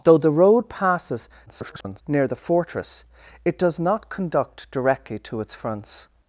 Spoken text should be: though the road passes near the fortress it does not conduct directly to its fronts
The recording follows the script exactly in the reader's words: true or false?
false